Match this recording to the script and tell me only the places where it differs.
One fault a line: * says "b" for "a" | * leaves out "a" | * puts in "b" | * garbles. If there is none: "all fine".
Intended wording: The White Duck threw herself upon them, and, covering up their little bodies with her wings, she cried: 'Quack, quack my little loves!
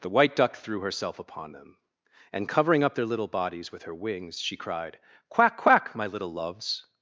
all fine